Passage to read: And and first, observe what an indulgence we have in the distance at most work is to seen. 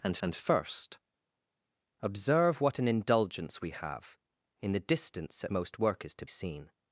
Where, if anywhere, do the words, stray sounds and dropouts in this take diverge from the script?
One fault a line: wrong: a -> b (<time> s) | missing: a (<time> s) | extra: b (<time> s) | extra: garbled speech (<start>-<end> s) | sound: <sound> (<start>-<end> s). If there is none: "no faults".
no faults